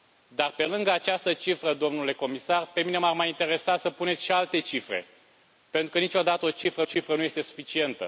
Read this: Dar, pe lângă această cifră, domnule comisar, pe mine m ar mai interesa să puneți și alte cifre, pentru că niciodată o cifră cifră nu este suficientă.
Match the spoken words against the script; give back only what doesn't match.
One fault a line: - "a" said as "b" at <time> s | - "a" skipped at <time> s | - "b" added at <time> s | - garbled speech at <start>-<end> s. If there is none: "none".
none